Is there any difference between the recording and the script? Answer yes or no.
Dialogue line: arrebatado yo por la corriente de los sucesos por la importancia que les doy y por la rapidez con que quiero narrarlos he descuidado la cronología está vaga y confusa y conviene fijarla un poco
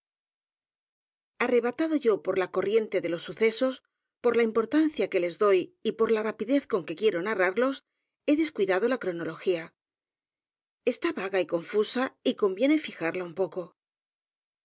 no